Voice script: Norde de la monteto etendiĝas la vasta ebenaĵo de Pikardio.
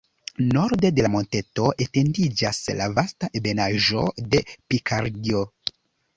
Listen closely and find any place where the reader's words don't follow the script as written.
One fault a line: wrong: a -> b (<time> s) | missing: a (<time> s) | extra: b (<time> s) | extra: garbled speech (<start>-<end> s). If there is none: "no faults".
no faults